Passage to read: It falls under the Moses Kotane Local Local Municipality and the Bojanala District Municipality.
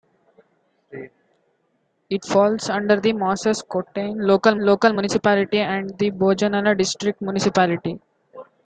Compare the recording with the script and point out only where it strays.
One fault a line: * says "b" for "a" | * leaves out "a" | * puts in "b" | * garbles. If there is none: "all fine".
all fine